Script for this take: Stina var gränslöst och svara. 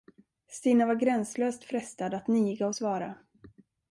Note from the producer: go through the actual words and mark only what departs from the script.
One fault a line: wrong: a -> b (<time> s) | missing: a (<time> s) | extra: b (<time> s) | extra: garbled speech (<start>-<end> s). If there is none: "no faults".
extra: frestad att niga (1.6 s)